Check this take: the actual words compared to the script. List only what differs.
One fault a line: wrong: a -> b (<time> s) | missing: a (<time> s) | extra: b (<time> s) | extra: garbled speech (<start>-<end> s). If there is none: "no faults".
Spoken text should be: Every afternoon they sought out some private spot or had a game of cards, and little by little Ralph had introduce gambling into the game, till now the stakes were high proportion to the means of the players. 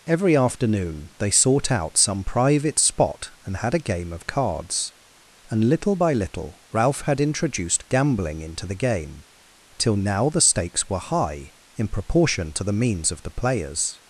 wrong: or -> and (3.4 s)
wrong: introduce -> introduced (7.2 s)
extra: in (11.8 s)